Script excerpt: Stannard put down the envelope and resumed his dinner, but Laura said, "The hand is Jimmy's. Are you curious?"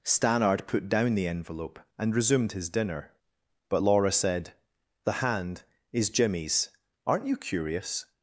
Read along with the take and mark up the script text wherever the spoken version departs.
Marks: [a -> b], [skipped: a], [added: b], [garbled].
Stannard put down the envelope and resumed his dinner, but Laura said, "The hand is Jimmy's. [Are -> Aren't] you curious?"